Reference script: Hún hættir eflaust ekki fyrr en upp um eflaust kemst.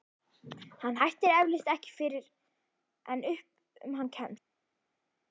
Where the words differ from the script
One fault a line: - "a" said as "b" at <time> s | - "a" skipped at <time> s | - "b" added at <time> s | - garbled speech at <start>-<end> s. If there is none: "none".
- "Hún" said as "Hann" at 0.8 s
- "eflaust" said as "hann" at 4.0 s